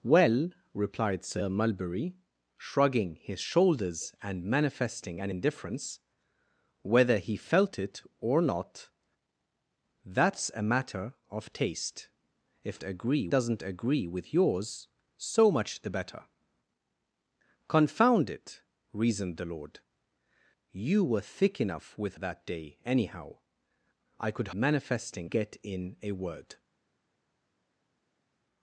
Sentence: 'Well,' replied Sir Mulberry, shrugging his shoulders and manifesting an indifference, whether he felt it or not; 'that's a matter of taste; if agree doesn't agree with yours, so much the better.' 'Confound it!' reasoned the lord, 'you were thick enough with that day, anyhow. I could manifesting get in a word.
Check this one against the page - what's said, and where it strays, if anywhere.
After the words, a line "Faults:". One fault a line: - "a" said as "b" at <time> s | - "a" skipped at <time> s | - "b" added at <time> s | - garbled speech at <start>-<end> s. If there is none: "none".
'Well,' replied Sir Mulberry, shrugging his shoulders and manifesting an indifference, whether he felt it or not; 'that's a matter of taste; if agree doesn't agree with yours, so much the better.' 'Confound it!' reasoned the lord, 'you were thick enough with that day, anyhow. I could manifesting get in a word.
Faults:
none